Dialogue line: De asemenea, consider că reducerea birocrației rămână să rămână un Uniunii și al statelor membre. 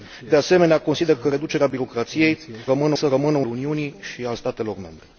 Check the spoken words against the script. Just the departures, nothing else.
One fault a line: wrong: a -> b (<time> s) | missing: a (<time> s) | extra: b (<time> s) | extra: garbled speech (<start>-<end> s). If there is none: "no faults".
no faults